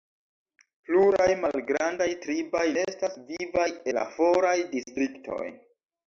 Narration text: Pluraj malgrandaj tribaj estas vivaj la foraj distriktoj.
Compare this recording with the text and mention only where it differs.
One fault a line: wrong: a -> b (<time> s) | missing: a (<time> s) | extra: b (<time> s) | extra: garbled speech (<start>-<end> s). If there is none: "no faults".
no faults